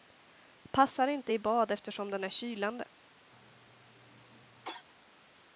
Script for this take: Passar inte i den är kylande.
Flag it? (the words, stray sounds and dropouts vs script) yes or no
yes